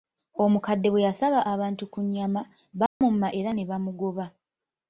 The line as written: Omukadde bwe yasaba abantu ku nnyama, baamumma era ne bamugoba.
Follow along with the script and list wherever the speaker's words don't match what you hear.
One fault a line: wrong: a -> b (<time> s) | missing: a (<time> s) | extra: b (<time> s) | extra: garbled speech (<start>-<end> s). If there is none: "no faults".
no faults